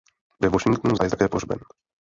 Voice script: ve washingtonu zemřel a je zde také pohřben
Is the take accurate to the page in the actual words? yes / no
no